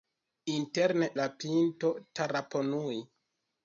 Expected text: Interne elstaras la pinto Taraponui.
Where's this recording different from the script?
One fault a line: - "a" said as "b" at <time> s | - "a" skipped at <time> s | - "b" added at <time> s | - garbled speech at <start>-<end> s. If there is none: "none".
- "elstaras" skipped at 1.1 s